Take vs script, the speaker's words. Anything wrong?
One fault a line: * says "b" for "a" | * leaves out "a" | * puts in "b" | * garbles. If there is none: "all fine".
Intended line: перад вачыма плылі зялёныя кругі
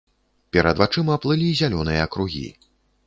all fine